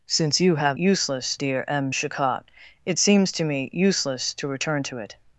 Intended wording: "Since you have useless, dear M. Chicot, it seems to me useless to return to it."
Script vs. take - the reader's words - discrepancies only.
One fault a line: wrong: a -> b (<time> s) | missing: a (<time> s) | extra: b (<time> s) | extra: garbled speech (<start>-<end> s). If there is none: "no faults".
no faults